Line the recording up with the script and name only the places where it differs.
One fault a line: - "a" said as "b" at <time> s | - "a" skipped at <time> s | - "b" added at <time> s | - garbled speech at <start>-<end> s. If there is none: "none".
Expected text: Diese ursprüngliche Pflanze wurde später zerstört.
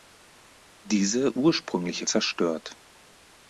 - "Pflanze wurde später" skipped at 2.1 s